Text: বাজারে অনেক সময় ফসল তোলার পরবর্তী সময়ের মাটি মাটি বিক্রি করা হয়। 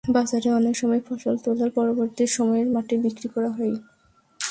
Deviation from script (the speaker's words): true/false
true